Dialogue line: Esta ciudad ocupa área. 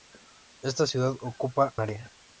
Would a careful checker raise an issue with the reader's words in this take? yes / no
no